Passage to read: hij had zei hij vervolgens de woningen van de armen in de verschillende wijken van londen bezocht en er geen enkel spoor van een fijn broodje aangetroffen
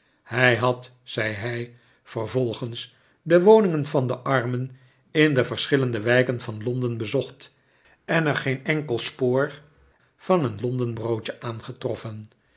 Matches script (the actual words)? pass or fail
fail